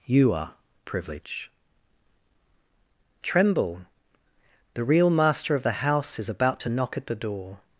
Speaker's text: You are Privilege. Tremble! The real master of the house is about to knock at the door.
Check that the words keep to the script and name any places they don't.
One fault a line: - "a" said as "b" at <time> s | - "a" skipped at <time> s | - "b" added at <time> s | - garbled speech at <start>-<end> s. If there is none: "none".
none